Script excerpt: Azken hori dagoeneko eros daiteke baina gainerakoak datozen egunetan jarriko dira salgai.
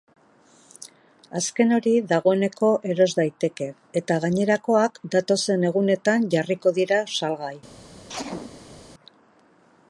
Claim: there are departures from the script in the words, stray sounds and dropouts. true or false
true